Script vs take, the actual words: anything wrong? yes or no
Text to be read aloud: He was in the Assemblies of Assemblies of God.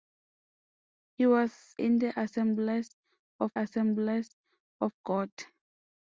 no